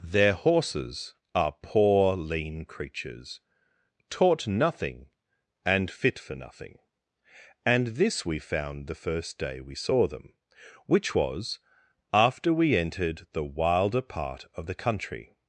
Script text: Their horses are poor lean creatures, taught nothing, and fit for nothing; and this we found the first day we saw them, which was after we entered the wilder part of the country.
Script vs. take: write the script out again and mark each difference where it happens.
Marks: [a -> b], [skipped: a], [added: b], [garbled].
Their horses are poor lean creatures, taught nothing, and fit for nothing; and this we found the first day we saw them, which was after we entered the wilder part of the country.